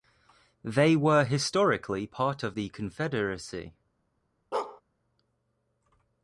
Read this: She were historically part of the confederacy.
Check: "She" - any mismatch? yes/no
yes